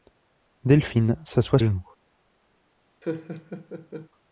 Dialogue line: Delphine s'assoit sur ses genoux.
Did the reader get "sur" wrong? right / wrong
wrong